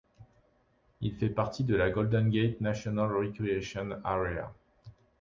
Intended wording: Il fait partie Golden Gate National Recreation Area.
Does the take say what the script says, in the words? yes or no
no